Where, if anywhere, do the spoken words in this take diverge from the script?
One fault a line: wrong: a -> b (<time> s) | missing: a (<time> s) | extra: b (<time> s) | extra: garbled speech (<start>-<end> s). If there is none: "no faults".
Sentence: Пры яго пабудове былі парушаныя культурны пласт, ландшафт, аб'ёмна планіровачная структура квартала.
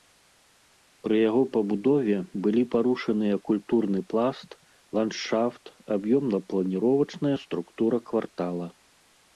no faults